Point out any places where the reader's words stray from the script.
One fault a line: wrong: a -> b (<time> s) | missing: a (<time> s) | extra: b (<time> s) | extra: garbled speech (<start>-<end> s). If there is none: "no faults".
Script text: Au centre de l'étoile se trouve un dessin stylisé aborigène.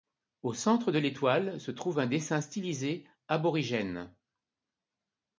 no faults